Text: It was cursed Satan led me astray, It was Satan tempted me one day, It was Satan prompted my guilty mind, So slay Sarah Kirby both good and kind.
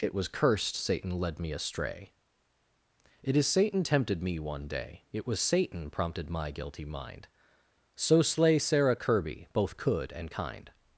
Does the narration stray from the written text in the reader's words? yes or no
yes